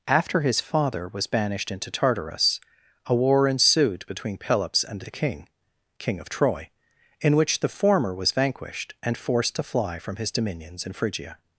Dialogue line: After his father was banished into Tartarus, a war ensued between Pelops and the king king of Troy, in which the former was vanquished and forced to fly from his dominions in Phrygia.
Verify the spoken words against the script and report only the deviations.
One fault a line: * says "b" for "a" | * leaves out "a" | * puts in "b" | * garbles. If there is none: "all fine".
all fine